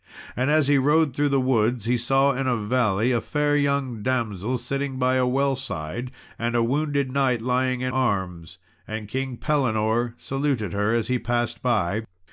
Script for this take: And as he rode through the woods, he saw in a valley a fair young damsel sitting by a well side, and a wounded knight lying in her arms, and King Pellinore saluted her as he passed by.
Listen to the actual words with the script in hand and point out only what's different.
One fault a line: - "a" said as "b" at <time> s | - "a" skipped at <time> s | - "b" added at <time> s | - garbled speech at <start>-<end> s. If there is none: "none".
- "her" skipped at 7.9 s